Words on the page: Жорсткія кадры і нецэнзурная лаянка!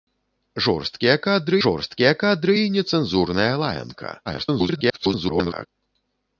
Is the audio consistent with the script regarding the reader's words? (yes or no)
no